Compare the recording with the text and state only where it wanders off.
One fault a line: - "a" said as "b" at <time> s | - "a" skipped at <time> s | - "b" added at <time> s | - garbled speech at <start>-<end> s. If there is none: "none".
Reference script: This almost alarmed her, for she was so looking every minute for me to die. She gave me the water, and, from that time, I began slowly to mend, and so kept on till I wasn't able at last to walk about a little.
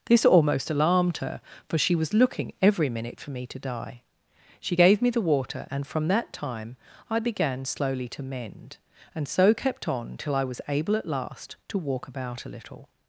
- "so" skipped at 2.1 s
- "wasn't" said as "was" at 10.4 s